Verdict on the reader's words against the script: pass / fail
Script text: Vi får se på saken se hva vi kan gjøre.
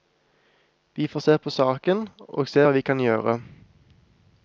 fail